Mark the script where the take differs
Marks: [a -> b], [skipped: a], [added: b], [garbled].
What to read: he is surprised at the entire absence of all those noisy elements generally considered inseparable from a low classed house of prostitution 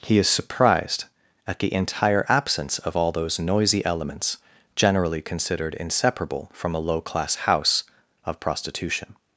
he is surprised at the entire absence of all those noisy elements generally considered inseparable from a low [classed -> class] house of prostitution